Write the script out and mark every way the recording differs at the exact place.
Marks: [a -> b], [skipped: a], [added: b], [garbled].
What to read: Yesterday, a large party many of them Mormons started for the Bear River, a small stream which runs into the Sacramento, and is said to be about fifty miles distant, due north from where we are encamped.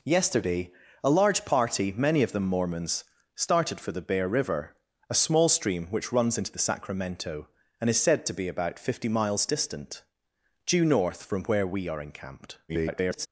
Yesterday, a large party many of them Mormons started for the Bear River, a small stream which runs into the Sacramento, and is said to be about fifty miles distant, due north from where we are encamped. [garbled]